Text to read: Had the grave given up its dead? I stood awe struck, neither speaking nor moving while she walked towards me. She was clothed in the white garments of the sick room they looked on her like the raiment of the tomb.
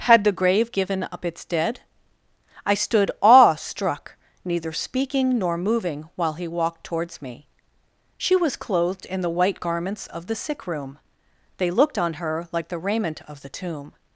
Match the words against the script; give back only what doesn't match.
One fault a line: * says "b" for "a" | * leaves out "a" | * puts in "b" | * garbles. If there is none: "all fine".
* says "he" for "she"